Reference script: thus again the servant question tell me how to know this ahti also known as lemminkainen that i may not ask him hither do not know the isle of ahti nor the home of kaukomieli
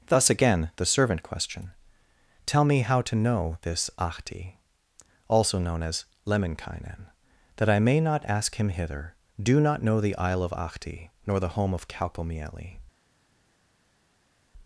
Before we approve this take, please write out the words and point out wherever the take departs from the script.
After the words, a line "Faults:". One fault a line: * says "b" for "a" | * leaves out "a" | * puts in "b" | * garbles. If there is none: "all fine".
thus again the servant question tell me how to know this ahti also known as lemminkainen that i may not ask him hither do not know the isle of ahti nor the home of kaukomieli
Faults:
all fine